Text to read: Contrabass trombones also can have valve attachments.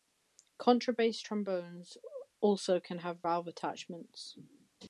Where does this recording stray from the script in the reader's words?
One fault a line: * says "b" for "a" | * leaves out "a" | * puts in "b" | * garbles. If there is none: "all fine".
all fine